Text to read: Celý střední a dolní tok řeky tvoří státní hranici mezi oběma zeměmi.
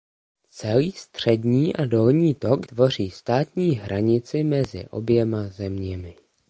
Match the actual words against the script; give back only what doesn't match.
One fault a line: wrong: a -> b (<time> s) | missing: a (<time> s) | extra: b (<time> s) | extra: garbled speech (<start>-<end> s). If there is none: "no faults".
missing: řeky (2.7 s)